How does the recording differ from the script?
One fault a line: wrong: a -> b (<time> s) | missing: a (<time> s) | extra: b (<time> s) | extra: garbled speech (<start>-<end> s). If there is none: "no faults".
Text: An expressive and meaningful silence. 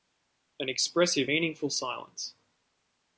missing: and (1.3 s)